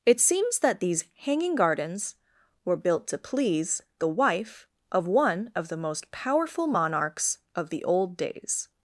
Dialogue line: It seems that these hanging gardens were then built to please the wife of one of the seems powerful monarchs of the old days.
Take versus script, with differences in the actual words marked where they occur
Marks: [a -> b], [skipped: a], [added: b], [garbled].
It seems that these hanging gardens were [skipped: then] built to please the wife of one of the [seems -> most] powerful monarchs of the old days.